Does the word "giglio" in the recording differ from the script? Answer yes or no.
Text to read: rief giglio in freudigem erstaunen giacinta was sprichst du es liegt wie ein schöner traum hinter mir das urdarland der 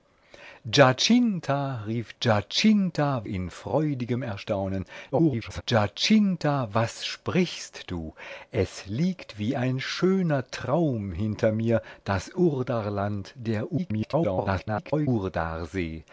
yes